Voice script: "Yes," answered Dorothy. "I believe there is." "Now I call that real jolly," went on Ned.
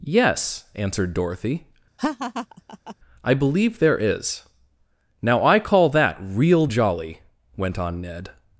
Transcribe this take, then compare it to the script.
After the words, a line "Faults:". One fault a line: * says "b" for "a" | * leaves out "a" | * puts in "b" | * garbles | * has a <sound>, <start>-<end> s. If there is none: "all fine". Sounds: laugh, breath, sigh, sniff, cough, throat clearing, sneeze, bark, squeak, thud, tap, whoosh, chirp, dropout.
"Yes," answered Dorothy. "I believe there is." "Now I call that real jolly," went on Ned.
Faults:
* has a laugh, 2.0-3.0 s